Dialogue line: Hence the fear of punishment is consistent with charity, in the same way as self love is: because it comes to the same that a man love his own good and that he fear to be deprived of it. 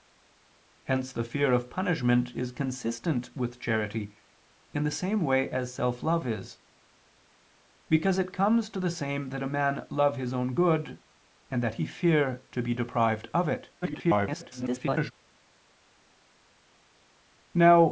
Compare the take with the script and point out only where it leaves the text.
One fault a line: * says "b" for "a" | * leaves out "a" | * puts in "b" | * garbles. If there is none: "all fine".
* garbles